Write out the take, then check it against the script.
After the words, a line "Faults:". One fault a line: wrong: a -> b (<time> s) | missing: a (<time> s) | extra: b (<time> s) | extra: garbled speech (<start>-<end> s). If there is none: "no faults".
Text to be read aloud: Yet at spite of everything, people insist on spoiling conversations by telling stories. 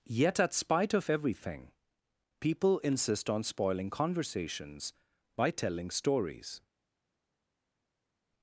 Yet at spite of everything, people insist on spoiling conversations by telling stories.
Faults:
no faults